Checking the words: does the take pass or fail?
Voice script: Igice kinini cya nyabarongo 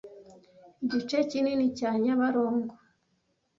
pass